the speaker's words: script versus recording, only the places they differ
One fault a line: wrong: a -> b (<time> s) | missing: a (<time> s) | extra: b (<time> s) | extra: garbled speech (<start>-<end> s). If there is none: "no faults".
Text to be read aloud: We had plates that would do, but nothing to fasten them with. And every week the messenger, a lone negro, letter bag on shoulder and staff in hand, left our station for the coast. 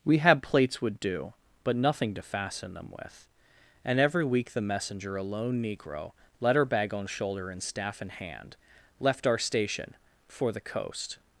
missing: that (0.8 s)